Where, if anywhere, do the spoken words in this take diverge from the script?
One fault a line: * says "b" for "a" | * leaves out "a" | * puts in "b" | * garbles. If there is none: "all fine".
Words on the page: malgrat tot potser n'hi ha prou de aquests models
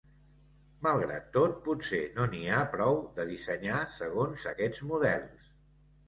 * puts in "no"
* puts in "dissenyar segons"